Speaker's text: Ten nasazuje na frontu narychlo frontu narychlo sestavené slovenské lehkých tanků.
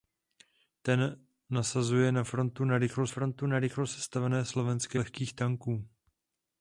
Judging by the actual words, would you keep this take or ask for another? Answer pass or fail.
pass